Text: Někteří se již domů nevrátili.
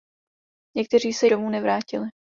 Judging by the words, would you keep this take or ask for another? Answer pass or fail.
fail